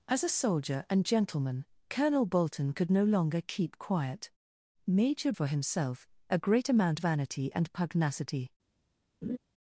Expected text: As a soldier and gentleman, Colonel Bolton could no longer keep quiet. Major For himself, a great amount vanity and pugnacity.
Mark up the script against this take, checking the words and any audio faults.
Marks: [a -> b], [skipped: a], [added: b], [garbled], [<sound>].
As a soldier and gentleman, Colonel Bolton could no longer keep quiet. Major For himself, a great amount vanity and pugnacity. [laugh]